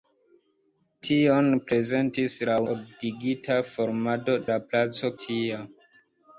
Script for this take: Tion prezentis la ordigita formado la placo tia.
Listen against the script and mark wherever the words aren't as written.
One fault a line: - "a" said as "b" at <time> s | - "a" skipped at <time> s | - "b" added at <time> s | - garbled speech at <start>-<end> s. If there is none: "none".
none